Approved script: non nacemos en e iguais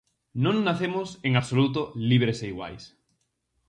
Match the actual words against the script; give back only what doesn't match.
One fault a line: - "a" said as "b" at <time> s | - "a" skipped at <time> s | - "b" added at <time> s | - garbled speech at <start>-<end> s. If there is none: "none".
- "absoluto libres" added at 1.4 s